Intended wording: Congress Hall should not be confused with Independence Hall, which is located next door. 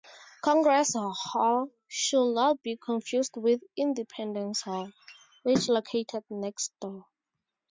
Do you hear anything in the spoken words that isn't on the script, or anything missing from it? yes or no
yes